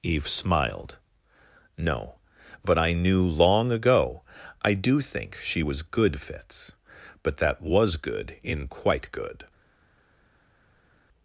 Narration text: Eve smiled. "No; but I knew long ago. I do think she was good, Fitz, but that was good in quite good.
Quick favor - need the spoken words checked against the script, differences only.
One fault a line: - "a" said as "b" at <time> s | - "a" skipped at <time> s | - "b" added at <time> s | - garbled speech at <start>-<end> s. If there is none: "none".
none